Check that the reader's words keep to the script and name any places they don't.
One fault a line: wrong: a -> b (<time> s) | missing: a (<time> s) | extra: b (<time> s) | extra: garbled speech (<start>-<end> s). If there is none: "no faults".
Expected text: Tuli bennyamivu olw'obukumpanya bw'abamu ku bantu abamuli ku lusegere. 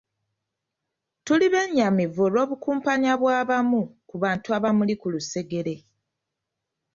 no faults